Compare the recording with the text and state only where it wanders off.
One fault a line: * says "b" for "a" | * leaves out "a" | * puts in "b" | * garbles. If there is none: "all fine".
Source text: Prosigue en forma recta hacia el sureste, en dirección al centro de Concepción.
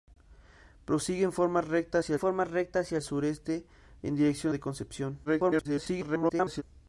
* puts in "forma recta hacia"
* leaves out "al centro"
* garbles